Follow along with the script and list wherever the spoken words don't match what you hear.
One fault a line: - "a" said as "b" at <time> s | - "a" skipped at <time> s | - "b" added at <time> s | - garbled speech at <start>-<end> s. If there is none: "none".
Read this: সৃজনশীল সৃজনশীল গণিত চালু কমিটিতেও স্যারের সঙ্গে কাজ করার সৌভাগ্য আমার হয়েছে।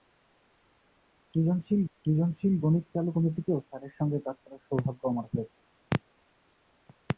none